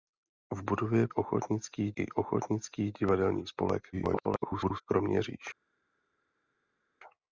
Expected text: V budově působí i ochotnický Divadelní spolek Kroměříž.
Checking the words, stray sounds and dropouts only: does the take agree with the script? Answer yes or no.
no